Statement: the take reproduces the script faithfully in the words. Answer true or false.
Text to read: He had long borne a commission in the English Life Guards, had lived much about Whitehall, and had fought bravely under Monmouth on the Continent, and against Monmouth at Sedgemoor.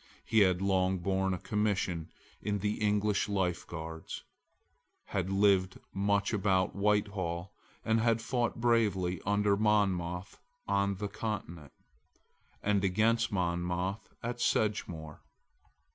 true